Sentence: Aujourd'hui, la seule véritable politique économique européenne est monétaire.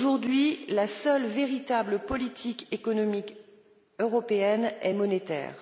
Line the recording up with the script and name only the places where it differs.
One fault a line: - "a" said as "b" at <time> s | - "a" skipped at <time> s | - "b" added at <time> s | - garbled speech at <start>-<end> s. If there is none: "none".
none